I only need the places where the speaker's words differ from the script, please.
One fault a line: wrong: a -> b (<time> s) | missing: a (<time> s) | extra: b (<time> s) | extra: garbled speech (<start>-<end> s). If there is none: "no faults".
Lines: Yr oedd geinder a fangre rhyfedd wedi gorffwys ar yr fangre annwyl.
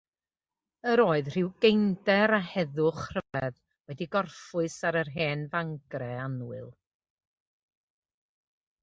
extra: rhyw (1.3 s)
wrong: fangre -> heddwch (2.5 s)
extra: hen (5.2 s)